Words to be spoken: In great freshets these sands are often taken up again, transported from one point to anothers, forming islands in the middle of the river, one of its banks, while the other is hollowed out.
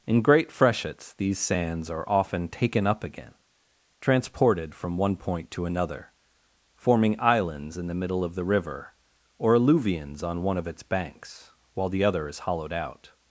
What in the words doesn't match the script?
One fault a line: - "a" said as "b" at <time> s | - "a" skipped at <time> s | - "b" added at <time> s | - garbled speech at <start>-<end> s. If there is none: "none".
- "anothers" said as "another" at 5.7 s
- "or alluvions on" added at 9.4 s